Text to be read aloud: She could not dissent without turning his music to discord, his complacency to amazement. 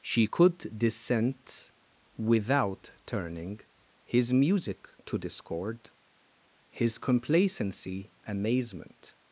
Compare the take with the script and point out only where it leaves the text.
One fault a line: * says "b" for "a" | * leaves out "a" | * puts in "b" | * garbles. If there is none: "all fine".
* leaves out "not"
* leaves out "to"